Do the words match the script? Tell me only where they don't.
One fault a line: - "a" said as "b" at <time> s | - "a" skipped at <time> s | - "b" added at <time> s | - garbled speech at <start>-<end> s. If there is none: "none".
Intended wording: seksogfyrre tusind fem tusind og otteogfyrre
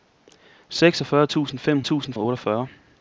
none